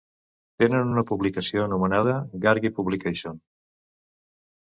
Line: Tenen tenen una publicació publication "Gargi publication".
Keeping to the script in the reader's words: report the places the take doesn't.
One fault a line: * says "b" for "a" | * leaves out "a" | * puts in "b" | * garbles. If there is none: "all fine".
* leaves out "tenen"
* says "anomenada" for "publication"